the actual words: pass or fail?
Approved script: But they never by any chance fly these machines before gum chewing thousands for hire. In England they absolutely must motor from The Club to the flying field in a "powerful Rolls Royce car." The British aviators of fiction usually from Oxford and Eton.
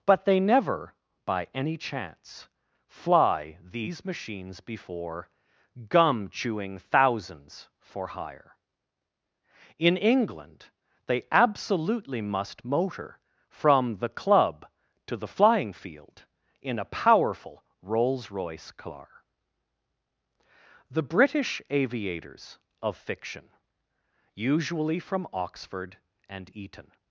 pass